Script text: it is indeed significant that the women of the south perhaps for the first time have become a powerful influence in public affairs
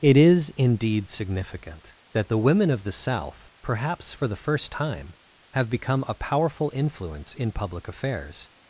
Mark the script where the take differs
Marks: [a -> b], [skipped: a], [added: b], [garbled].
it is indeed significant that the women of the south perhaps for the first time have become a powerful influence in public affairs